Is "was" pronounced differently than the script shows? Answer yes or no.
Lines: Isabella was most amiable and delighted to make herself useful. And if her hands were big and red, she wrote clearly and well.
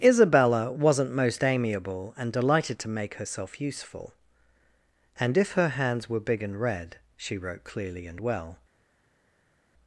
yes